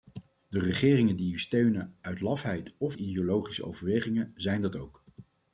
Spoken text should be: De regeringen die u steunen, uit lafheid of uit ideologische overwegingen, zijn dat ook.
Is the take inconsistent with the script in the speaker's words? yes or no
yes